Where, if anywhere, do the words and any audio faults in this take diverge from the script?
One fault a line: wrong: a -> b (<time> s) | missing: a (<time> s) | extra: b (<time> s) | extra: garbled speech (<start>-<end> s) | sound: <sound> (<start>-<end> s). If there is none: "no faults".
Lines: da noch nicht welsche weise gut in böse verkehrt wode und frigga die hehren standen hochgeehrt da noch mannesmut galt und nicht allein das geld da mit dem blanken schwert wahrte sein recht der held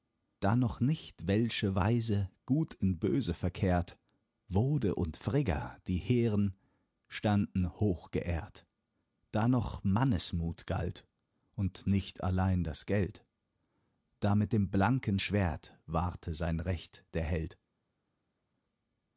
no faults